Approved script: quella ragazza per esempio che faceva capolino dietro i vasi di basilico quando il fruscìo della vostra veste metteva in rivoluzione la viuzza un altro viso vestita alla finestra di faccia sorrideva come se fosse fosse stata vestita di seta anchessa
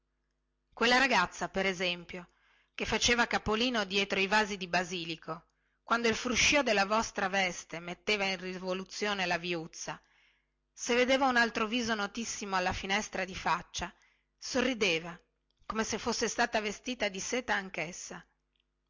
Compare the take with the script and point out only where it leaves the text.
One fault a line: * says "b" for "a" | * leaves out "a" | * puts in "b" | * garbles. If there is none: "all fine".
* puts in "se vedeva"
* says "notissimo" for "vestita"
* leaves out "fosse"